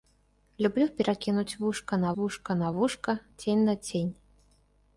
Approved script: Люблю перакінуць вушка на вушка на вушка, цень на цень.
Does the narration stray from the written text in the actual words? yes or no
no